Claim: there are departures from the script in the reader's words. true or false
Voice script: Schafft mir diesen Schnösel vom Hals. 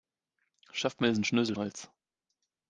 true